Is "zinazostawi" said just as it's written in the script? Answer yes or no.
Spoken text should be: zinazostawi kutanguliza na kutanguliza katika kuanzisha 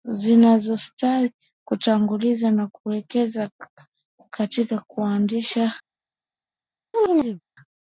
yes